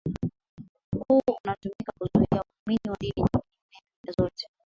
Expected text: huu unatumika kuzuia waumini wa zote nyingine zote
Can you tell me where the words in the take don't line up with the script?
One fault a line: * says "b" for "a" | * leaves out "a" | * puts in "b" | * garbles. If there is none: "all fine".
* says "dini" for "zote"